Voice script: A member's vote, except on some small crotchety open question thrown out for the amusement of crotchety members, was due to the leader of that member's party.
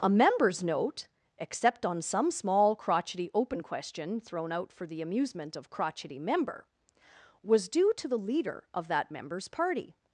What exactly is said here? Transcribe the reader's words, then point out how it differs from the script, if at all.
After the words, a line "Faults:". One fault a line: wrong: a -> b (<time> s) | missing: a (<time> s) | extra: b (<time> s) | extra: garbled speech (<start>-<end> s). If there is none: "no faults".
A member's note, except on some small crotchety open question thrown out for the amusement of crotchety member, was due to the leader of that member's party.
Faults:
wrong: vote -> note (0.6 s)
wrong: members -> member (6.2 s)